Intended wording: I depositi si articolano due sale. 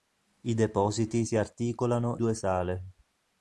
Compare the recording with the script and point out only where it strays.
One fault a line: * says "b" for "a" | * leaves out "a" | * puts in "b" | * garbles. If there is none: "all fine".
all fine